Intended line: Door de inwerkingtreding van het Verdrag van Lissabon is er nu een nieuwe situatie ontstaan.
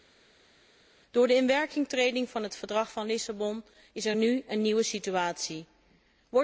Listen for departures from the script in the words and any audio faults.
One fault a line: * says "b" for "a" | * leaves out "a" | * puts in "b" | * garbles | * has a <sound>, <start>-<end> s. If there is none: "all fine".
all fine